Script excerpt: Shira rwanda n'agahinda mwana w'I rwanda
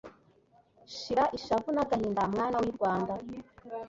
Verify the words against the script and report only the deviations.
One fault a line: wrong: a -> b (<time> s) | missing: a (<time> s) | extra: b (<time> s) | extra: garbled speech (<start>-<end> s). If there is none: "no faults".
wrong: rwanda -> ishavu (1.4 s)